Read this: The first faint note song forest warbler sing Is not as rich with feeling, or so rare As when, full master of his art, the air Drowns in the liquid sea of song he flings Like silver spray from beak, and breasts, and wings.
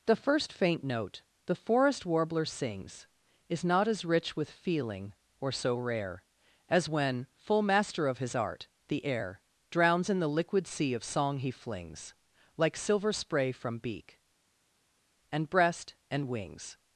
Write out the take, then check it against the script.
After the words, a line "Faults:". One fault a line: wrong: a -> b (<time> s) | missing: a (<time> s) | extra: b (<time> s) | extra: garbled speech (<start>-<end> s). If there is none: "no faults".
The first faint note the forest warbler sings Is not as rich with feeling, or so rare As when, full master of his art, the air Drowns in the liquid sea of song he flings Like silver spray from beak, and breast, and wings.
Faults:
wrong: song -> the (1.4 s)
wrong: sing -> sings (2.5 s)
wrong: breasts -> breast (15.5 s)